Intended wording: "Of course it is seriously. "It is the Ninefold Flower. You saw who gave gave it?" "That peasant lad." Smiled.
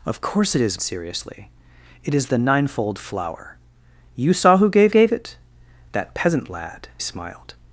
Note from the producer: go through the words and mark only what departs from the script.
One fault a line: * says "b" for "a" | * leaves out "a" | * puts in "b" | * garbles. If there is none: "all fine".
all fine